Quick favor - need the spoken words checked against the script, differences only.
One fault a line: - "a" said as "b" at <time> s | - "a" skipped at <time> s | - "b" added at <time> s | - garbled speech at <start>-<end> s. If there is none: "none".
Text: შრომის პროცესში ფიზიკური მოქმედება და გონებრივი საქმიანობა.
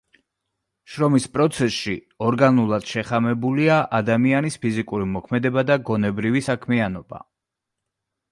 - "ორგანულად შეხამებულია ადამიანის" added at 2.3 s